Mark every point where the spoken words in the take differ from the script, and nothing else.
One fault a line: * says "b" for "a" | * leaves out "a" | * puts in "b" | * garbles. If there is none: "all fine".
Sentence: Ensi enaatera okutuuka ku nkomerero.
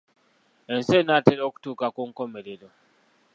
all fine